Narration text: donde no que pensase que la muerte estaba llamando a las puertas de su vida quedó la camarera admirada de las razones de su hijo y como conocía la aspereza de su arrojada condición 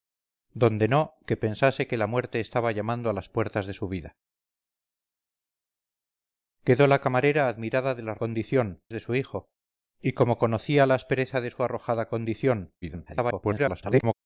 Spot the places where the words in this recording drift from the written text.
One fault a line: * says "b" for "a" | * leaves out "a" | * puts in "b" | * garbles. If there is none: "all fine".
* says "condición" for "razones"
* garbles